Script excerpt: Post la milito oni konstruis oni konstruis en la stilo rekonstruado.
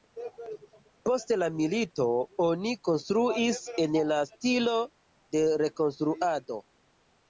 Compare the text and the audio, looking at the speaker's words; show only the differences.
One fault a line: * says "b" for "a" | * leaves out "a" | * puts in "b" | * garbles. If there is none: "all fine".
* leaves out "oni konstruis"
* puts in "de"